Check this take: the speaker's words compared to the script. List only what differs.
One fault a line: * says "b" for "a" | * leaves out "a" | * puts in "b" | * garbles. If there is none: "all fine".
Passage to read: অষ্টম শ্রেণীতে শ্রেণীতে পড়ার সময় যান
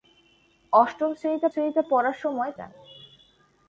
all fine